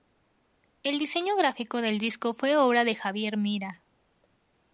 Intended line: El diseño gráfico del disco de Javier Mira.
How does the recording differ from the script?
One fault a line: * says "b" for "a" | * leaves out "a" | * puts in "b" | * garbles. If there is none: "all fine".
* puts in "fue obra"